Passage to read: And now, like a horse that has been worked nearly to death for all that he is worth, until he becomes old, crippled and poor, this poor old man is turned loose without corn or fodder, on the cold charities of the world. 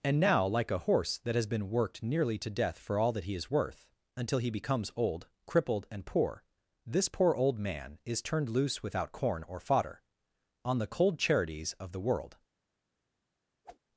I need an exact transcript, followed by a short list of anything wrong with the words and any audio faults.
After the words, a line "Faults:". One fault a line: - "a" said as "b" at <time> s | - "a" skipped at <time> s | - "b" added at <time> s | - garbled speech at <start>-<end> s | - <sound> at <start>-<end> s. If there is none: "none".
And now, like a horse that has been worked nearly to death for all that he is worth, until he becomes old, crippled and poor, this poor old man is turned loose without corn or fodder, on the cold charities of the world.
Faults:
- whoosh at 13.6-13.8 s